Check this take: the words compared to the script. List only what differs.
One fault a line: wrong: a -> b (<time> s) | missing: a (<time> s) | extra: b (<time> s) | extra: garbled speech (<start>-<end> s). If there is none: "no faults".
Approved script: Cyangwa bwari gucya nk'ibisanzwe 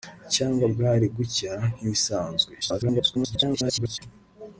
extra: garbled speech (2.6-4.0 s)